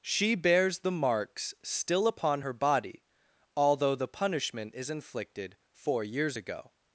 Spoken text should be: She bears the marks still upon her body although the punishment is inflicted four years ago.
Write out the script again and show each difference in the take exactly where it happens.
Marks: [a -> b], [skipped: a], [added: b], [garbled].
She bears the marks still upon her body although the punishment is inflicted four years ago.